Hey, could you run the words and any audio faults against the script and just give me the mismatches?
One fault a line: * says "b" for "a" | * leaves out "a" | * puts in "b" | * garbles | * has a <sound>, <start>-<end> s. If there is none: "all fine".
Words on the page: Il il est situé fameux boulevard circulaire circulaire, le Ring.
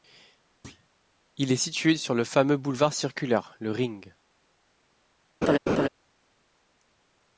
* has a thud, 0.6-0.9 s
* leaves out "il"
* puts in "sur le"
* leaves out "circulaire"
* has a laugh, 5.4-5.9 s